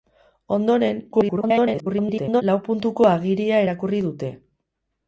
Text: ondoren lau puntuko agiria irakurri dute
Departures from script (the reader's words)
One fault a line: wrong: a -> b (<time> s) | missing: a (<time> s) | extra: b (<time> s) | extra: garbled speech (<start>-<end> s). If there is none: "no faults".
extra: garbled speech (1.1-2.4 s)